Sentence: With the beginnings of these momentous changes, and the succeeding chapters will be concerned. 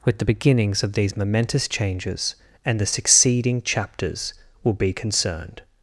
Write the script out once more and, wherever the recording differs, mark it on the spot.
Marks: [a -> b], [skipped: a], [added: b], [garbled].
With the beginnings of these momentous changes, and the succeeding chapters will be concerned.